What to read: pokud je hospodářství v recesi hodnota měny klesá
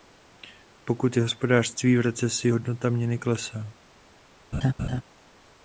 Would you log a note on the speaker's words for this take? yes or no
no